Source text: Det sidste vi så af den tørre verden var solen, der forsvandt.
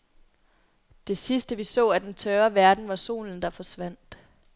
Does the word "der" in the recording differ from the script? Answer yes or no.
no